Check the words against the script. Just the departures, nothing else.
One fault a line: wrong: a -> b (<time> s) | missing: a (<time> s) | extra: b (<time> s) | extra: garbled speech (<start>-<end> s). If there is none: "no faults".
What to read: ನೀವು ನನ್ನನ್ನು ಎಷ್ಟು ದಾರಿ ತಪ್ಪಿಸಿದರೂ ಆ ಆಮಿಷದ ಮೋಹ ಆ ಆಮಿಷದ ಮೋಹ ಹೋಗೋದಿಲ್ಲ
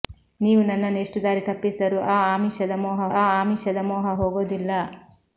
no faults